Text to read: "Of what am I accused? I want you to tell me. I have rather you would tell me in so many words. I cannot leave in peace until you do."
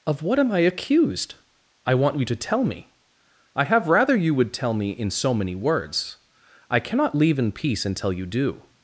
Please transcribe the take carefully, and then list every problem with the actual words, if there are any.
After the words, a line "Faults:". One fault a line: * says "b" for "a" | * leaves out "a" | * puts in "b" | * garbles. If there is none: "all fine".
"Of what am I accused? I want you to tell me. I have rather you would tell me in so many words. I cannot leave in peace until you do."
Faults:
all fine